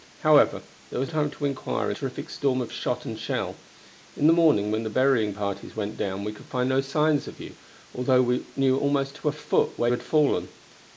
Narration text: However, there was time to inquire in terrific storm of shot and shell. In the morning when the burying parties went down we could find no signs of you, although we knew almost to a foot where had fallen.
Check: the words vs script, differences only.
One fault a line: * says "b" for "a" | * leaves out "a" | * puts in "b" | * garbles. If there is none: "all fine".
all fine